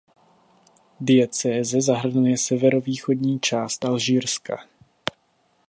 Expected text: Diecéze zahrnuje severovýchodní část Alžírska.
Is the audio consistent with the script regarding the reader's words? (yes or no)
yes